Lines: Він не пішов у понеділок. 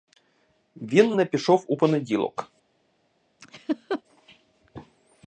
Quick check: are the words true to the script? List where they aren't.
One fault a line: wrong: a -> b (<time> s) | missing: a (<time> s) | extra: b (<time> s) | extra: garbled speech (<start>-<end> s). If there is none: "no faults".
no faults